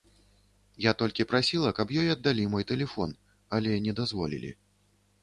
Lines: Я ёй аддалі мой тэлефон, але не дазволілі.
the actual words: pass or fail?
fail